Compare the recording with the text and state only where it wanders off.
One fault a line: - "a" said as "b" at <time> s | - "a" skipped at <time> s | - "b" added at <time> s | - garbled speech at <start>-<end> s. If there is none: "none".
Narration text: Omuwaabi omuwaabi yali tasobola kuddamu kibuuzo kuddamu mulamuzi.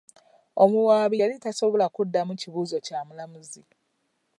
- "omuwaabi" skipped at 1.2 s
- "kuddamu" said as "kya" at 2.9 s